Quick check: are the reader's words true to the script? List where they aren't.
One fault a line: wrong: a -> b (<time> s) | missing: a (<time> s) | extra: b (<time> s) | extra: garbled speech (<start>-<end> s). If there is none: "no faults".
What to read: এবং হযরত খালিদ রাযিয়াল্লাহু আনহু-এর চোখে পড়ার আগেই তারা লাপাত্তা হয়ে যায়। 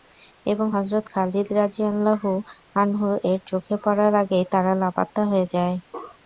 no faults